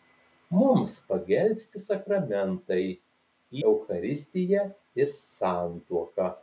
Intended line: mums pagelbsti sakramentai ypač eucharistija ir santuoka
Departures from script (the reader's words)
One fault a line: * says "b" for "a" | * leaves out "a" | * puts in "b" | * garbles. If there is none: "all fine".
* leaves out "ypač"